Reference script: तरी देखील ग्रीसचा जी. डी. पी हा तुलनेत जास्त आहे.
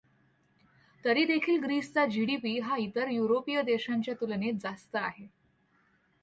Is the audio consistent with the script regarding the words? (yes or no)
no